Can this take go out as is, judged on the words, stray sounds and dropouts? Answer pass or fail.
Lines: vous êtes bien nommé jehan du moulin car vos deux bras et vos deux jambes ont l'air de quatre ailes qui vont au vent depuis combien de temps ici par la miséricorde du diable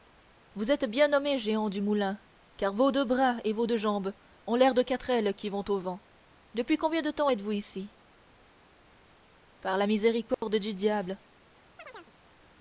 fail